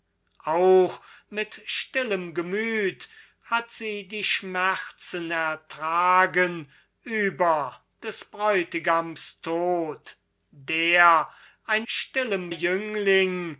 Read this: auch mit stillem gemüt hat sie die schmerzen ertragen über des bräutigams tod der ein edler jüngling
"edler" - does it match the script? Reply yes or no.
no